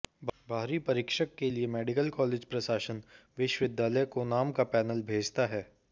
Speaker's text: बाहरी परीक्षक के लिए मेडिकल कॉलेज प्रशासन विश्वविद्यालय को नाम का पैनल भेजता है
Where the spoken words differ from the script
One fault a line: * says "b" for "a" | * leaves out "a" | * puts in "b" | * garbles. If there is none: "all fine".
all fine